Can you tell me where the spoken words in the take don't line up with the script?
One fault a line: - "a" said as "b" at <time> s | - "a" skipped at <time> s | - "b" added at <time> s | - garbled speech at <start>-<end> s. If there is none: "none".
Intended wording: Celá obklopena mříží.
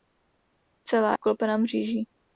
none